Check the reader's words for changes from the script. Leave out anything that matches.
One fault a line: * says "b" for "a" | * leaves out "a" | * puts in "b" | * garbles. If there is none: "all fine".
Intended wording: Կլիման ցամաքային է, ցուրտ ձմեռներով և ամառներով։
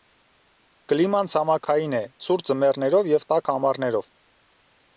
* puts in "տաք"